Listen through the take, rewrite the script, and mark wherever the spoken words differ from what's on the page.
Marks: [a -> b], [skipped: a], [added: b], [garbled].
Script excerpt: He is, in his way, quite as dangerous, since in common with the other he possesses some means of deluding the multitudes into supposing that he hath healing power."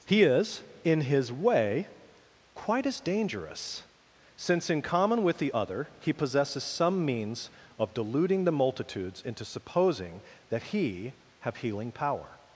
He is, in his way, quite as dangerous, since in common with the other he possesses some means of deluding the multitudes into supposing that he [hath -> have] healing power."